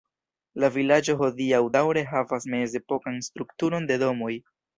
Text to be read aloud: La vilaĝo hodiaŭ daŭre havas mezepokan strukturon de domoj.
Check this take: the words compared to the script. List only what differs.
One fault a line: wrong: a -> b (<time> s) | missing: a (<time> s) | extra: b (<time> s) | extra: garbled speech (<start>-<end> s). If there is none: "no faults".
no faults